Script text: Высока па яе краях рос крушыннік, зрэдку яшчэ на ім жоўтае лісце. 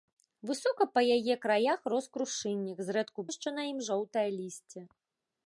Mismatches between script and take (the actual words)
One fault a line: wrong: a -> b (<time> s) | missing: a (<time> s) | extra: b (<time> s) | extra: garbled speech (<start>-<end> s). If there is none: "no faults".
no faults